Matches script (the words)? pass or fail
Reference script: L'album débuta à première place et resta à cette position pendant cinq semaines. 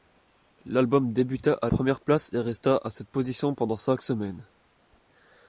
pass